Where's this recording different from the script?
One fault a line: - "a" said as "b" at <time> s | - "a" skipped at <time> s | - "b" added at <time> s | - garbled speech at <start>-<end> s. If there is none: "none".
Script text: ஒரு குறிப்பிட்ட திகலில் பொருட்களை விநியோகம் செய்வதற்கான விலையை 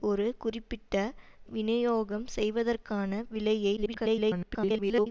- "திகலில் பொருட்களை" skipped at 1.0 s
- garbled speech at 3.8-5.1 s